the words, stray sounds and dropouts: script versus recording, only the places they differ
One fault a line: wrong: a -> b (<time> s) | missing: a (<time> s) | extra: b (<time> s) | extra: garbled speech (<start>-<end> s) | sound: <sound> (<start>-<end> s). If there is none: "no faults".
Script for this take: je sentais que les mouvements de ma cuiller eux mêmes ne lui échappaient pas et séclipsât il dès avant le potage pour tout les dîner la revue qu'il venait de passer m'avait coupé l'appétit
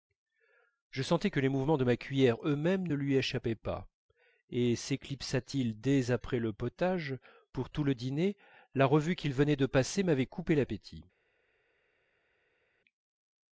wrong: avant -> après (6.1 s)
wrong: les -> le (7.8 s)